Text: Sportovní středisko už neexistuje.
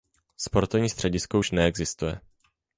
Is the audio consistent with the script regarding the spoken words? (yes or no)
yes